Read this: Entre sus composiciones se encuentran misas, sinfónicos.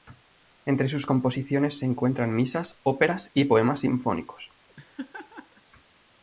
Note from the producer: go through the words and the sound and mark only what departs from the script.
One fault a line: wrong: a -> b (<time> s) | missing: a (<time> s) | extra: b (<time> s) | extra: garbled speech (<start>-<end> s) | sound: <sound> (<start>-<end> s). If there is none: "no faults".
extra: óperas y poemas (2.8 s)
sound: laugh (4.7-5.6 s)